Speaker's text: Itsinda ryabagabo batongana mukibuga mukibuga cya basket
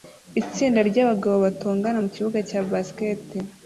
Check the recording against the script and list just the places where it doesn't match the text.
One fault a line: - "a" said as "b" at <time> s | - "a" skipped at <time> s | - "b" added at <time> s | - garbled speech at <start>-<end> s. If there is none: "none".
- "mukibuga" skipped at 2.4 s